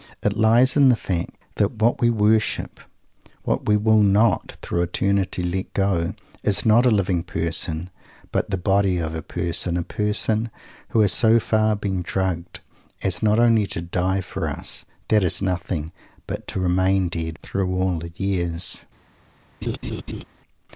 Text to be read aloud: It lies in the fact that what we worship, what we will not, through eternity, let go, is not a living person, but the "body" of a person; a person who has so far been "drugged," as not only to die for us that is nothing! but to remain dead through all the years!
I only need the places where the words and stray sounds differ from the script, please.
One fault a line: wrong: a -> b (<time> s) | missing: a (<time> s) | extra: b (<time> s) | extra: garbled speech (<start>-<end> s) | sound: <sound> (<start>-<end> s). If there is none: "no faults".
sound: laugh (19.6-20.2 s)